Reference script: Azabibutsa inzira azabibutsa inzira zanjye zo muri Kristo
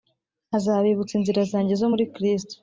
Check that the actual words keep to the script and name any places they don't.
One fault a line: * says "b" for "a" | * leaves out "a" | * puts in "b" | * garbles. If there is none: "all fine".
* leaves out "azabibutsa inzira"